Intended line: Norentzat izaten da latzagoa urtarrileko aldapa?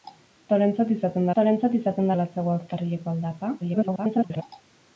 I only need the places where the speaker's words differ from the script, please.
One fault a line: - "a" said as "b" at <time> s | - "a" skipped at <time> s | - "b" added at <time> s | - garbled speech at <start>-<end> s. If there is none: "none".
- "norentzat izaten" added at 1.4 s
- garbled speech at 3.6-4.4 s